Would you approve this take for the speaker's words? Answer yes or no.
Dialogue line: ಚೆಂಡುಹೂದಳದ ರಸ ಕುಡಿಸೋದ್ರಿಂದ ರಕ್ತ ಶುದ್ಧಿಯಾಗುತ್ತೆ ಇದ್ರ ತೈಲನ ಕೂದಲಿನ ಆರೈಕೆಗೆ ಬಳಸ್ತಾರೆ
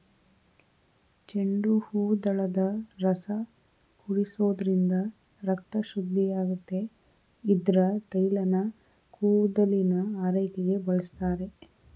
yes